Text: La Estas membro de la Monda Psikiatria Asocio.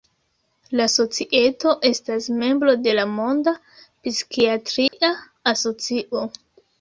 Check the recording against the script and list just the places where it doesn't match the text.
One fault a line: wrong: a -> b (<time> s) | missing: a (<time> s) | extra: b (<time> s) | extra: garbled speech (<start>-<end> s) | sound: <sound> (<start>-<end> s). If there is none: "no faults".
extra: Societo (0.9 s)
sound: dropout (4.9-4.9 s)